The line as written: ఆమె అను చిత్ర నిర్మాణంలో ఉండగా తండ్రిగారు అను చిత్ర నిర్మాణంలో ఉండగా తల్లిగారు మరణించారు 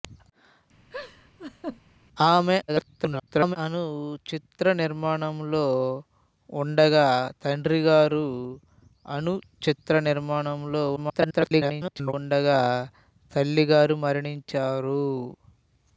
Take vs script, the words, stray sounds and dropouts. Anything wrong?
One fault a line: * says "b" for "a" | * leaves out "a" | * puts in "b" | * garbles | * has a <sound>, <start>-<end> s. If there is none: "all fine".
* has a laugh, 0.9-1.8 s
* garbles
* garbles